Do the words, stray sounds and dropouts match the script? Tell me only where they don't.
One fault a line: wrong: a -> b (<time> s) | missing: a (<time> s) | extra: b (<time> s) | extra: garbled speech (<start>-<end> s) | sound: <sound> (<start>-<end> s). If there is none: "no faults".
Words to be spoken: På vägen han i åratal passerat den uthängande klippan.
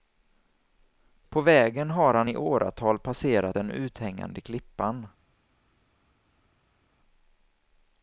extra: har (1.9 s)